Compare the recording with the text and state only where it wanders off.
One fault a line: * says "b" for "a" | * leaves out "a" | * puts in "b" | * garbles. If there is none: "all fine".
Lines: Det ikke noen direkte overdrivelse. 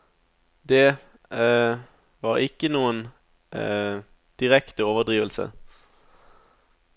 * puts in "var"